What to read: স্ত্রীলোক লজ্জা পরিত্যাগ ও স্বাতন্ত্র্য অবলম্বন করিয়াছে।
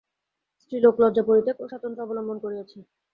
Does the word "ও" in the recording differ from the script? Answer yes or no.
no